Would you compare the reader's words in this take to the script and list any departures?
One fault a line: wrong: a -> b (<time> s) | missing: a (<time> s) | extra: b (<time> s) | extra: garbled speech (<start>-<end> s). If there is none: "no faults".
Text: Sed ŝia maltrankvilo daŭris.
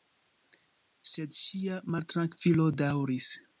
no faults